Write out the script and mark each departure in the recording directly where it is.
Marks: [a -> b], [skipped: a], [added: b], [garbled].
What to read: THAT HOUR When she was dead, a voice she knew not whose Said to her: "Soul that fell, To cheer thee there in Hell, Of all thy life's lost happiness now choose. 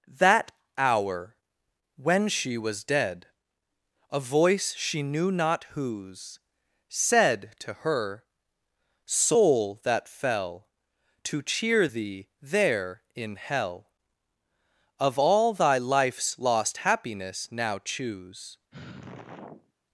THAT HOUR When she was dead, a voice she knew not whose Said to her: "Soul that fell, To cheer thee there in Hell, Of all thy life's lost happiness now choose.